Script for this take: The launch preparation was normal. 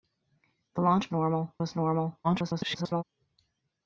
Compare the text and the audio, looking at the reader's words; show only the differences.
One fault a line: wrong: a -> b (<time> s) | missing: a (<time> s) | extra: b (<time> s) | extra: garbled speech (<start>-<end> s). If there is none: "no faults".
wrong: preparation -> normal (1.1 s)
extra: garbled speech (2.2-3.0 s)